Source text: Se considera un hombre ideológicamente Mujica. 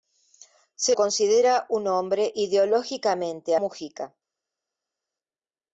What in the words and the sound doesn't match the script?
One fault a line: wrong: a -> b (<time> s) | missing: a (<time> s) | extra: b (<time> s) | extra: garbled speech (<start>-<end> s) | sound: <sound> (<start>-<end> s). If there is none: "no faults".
no faults